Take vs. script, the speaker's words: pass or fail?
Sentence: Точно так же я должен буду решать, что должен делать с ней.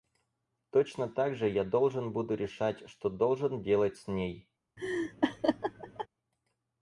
pass